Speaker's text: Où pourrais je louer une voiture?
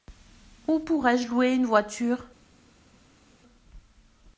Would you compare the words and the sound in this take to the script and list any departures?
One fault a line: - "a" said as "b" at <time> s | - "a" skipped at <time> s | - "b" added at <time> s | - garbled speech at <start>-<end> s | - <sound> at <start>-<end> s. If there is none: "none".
none